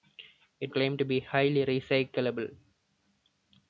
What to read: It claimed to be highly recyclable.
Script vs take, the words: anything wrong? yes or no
no